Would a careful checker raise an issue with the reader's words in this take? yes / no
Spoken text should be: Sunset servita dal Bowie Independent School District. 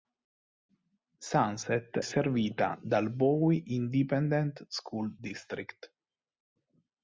no